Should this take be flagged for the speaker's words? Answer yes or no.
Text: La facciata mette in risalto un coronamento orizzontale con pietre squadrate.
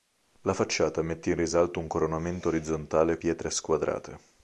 yes